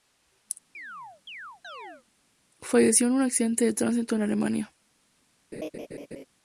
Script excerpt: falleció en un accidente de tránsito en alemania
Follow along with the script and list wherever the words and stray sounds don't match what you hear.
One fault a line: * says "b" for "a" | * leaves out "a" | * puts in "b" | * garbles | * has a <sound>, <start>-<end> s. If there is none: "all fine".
* has a chirp, 0.7-2.0 s
* has a laugh, 5.5-6.3 s